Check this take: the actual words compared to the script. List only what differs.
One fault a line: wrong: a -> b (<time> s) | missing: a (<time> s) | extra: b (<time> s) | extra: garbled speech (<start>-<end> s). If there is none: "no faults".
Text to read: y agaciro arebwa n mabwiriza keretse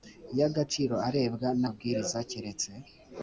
no faults